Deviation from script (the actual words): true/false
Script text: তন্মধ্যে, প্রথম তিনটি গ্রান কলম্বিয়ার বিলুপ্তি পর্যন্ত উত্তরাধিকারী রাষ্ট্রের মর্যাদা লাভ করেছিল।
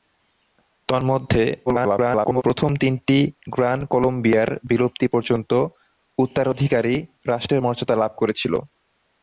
true